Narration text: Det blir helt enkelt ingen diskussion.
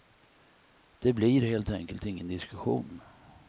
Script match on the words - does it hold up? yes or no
yes